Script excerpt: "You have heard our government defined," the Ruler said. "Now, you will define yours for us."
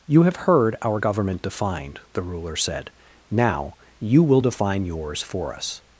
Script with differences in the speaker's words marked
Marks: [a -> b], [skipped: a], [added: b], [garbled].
"You have heard our government defined," the Ruler said. "Now, you will define yours for us."